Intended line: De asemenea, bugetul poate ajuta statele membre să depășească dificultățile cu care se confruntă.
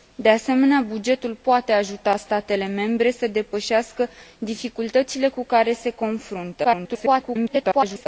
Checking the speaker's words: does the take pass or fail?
fail